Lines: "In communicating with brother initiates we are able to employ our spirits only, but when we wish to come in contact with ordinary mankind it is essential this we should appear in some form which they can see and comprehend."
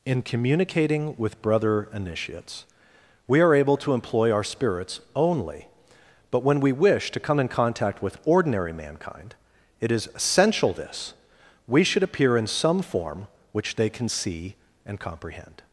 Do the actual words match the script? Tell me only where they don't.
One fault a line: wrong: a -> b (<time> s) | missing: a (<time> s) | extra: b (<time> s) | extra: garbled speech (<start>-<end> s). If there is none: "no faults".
no faults